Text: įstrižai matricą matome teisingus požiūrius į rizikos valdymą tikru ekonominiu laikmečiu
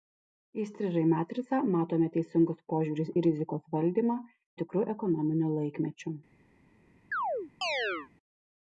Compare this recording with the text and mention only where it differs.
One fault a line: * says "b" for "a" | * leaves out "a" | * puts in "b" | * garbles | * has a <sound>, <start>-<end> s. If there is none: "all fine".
* has a chirp, 7.1-8.1 s